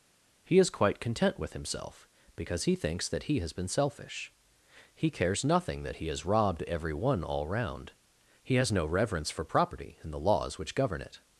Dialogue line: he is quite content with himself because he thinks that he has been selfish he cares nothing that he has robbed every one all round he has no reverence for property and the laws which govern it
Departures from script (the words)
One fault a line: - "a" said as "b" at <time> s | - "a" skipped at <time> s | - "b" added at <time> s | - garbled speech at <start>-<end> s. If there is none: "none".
none